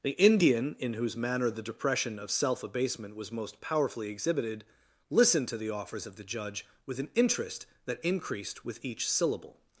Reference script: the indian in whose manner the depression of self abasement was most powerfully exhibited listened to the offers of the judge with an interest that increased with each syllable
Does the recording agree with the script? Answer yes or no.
yes